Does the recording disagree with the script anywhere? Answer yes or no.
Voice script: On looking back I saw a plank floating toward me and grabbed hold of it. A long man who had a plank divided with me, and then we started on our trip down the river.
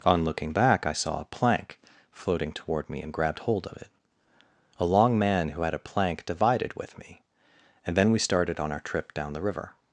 no